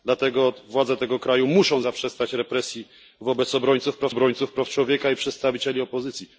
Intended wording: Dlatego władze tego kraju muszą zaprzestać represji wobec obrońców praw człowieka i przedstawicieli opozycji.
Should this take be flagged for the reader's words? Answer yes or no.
yes